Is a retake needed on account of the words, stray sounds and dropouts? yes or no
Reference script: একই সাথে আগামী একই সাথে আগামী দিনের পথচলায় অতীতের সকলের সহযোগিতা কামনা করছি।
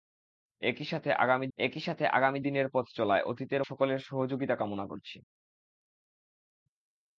no